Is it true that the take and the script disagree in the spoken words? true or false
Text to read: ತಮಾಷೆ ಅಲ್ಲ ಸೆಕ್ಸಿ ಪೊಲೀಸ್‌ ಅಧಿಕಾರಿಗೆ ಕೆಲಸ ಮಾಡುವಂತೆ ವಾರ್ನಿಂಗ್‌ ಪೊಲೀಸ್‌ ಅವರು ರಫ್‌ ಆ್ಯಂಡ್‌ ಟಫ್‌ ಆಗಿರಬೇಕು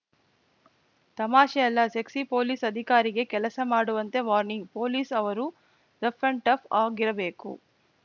false